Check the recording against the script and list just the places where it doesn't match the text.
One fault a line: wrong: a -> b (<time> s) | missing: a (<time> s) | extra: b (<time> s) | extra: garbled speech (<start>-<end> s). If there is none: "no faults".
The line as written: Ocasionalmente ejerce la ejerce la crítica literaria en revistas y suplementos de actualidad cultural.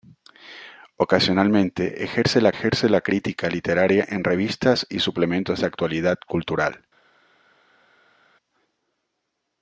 no faults